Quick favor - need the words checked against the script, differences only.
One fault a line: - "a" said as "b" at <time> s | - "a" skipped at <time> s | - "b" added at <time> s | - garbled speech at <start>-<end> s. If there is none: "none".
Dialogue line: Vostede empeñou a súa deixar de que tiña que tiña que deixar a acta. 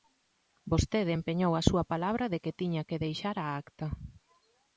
- "deixar" said as "palabra" at 1.9 s
- "tiña que" skipped at 3.0 s